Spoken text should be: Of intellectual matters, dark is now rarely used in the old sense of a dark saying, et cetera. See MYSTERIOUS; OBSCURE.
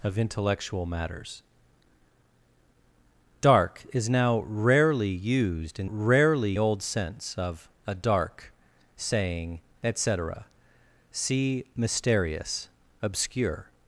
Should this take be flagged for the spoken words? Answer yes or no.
yes